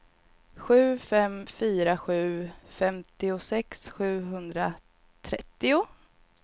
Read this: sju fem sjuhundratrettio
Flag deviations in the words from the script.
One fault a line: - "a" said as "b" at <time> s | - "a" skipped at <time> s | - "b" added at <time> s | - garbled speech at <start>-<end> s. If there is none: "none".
- "fyra sju femtiosex" added at 1.5 s